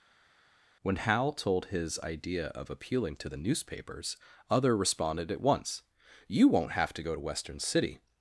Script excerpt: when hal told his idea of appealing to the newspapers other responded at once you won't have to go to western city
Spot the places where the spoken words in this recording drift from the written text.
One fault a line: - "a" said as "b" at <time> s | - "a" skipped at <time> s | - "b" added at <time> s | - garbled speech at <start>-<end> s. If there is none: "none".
none